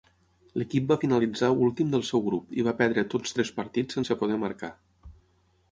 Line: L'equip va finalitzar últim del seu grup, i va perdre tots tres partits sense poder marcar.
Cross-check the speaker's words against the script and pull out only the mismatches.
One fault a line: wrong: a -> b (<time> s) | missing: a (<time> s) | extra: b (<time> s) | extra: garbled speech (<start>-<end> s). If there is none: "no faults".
no faults